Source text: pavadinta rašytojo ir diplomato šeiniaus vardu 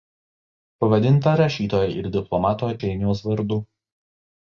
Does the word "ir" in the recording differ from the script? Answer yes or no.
no